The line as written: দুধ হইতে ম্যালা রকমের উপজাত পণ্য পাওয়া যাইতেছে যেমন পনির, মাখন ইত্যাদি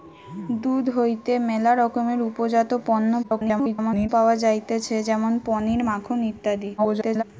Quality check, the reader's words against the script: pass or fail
fail